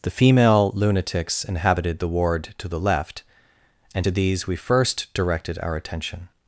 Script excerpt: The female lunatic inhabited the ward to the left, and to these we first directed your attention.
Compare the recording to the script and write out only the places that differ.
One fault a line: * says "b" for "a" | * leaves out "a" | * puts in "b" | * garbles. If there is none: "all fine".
* says "lunatics" for "lunatic"
* says "our" for "your"